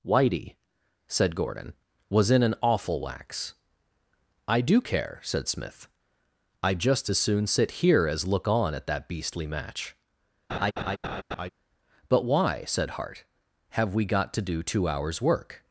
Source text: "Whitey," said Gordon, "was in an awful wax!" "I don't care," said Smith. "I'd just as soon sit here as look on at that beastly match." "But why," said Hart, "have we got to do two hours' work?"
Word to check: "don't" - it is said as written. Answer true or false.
false